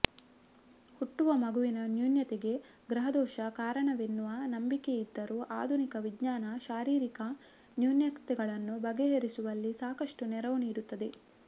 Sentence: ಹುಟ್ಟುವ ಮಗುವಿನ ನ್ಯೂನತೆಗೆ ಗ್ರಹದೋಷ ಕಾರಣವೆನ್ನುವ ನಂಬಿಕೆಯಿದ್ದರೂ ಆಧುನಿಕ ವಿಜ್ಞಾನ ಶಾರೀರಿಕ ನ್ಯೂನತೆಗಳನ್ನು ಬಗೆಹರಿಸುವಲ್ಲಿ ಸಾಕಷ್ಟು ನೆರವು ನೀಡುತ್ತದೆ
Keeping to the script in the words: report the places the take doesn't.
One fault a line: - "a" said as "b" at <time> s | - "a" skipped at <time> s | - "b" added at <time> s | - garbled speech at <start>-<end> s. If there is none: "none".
none